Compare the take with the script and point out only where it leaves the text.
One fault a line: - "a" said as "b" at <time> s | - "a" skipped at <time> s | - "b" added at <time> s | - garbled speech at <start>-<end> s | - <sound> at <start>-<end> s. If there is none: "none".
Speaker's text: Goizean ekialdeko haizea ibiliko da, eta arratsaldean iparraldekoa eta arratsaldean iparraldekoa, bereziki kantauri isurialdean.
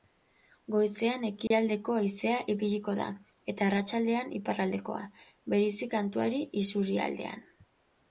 - dropout at 1.5-1.5 s
- "eta arratsaldean iparraldekoa" skipped at 5.0 s